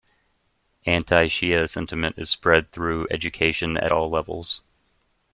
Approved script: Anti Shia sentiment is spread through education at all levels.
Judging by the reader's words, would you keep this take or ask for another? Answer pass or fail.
pass